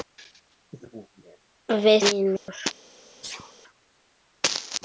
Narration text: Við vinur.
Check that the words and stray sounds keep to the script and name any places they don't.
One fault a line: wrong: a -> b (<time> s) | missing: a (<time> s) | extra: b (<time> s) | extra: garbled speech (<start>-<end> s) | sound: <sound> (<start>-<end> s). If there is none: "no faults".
sound: dropout (2.4-2.5 s)
sound: sneeze (3.2-3.5 s)